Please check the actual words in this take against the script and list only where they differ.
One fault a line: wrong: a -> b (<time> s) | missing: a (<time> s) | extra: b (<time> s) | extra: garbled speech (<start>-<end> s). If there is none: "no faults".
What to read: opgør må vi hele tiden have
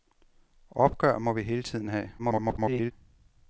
extra: garbled speech (2.2-2.9 s)